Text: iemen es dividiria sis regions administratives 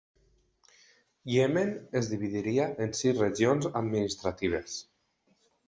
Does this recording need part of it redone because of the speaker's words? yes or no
yes